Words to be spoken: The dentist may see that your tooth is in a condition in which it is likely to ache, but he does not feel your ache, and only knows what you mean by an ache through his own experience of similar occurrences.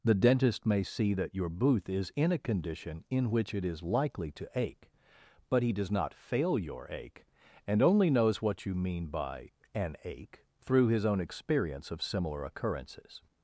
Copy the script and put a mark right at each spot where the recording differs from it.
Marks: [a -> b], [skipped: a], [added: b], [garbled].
The dentist may see that your [tooth -> booth] is in a condition in which it is likely to ache, but he does not [feel -> fail] your ache, and only knows what you mean by an ache through his own experience of similar occurrences.